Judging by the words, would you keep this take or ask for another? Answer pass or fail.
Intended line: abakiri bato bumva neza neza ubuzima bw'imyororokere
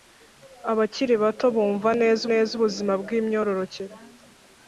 pass